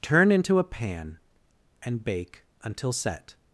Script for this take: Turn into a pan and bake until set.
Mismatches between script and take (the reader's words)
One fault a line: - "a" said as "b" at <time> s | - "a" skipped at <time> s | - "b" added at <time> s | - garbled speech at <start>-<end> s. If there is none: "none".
none